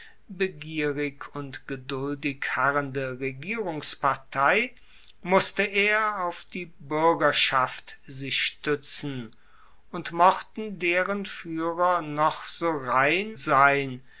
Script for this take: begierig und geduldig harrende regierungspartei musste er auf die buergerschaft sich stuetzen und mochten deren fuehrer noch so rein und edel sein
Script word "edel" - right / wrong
wrong